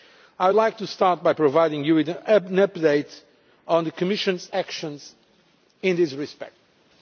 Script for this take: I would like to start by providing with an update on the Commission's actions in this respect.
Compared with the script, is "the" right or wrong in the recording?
right